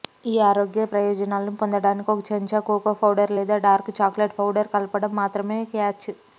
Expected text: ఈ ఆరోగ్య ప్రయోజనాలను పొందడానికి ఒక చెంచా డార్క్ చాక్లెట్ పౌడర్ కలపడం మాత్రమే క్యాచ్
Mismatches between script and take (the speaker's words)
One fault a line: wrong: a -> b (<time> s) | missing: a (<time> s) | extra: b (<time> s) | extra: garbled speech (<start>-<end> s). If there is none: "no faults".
extra: కోకో పౌడర్ లేదా (2.7 s)